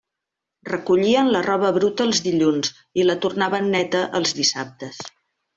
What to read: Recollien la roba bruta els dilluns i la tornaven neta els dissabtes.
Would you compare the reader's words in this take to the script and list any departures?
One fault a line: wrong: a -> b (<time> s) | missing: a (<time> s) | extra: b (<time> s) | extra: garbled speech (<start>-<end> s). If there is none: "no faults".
no faults